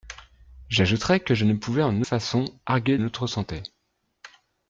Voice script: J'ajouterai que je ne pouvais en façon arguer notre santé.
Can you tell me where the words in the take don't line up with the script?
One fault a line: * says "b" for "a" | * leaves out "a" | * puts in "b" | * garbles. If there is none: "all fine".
all fine